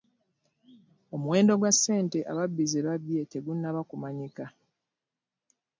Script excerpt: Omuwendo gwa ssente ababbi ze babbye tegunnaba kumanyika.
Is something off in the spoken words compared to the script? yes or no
no